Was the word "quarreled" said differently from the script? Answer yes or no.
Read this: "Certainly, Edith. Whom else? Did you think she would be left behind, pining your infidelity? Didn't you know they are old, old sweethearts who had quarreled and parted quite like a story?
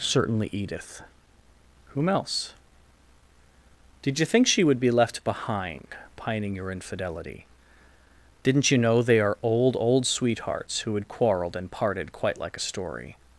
no